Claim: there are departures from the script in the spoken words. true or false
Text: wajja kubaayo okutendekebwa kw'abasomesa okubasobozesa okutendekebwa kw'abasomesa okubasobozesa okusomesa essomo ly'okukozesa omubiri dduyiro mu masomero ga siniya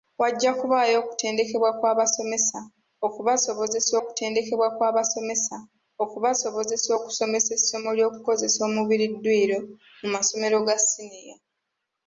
false